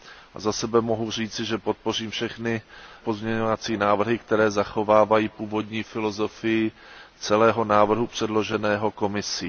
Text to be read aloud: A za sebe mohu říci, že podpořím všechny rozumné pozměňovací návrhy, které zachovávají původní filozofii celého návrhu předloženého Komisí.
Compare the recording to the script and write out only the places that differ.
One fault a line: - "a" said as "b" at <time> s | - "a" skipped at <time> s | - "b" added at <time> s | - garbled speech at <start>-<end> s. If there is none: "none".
- "rozumné" skipped at 2.6 s